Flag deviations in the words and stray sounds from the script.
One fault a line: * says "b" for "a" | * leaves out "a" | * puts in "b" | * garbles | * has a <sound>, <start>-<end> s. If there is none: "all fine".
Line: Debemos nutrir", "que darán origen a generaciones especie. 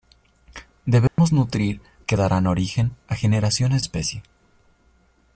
* has a dropout, 1.1-1.2 s